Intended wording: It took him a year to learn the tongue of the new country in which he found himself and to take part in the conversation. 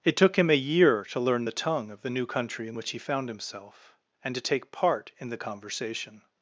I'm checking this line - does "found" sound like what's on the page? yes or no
yes